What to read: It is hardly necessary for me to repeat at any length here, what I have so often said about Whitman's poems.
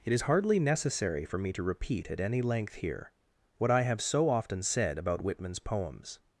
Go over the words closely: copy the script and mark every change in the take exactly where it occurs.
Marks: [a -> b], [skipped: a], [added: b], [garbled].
It is hardly necessary for me to repeat at any length here, what I have so often said about Whitman's poems.